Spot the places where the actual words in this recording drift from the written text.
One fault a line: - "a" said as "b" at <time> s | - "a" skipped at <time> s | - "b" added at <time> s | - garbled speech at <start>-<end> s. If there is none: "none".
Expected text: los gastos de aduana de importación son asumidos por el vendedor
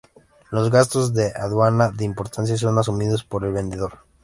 none